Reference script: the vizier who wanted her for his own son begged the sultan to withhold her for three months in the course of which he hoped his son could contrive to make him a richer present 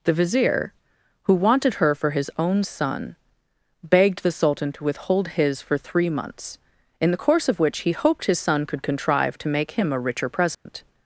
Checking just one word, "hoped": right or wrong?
right